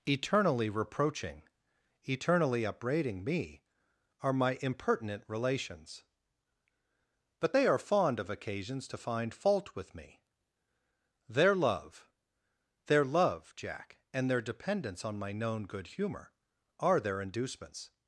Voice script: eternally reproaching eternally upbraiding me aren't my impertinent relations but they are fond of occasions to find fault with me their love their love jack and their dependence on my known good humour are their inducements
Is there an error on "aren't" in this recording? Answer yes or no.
yes